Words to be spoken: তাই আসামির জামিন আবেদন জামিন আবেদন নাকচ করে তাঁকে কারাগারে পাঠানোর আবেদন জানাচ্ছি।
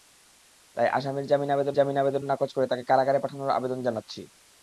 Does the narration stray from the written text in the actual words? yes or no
no